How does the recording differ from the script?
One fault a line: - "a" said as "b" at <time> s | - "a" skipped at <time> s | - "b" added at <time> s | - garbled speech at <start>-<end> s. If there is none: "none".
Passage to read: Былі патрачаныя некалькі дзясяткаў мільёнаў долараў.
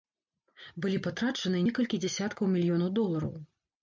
none